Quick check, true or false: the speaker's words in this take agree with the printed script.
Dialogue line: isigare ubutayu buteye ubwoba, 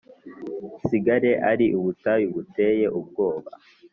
false